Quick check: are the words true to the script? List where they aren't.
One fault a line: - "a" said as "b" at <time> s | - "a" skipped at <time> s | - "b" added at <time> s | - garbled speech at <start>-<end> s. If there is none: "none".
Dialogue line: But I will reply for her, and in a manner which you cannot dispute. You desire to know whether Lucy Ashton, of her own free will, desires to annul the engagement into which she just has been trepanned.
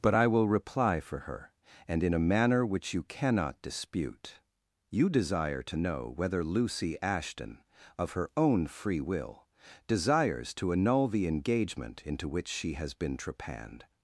- "just" skipped at 12.7 s